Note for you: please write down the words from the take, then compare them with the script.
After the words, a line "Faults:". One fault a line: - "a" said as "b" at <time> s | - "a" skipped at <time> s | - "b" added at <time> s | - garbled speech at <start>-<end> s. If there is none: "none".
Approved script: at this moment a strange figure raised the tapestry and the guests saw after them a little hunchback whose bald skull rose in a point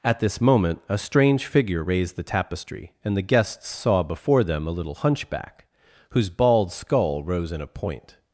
at this moment a strange figure raised the tapestry and the guests saw before them a little hunchback whose bald skull rose in a point
Faults:
- "after" said as "before" at 4.0 s